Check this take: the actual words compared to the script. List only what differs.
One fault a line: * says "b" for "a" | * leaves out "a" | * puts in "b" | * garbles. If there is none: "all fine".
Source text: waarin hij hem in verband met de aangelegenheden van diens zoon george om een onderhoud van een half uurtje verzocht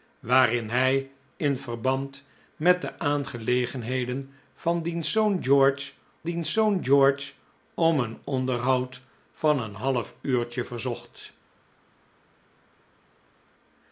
* leaves out "hem"
* puts in "diens zoon george"